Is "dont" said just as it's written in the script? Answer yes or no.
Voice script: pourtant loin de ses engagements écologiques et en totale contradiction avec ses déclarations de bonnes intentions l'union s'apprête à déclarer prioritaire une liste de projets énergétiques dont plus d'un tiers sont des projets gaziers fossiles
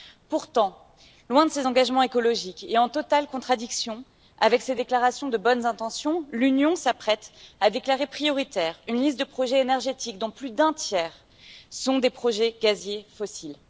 yes